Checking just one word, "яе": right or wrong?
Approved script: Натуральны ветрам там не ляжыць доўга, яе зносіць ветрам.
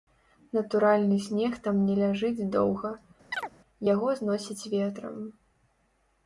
wrong